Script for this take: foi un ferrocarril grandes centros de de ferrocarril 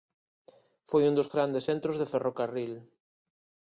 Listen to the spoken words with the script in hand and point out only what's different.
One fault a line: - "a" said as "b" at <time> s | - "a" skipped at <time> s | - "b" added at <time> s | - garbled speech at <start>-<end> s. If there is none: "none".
- "ferrocarril" said as "dos" at 1.2 s
- "de" skipped at 2.1 s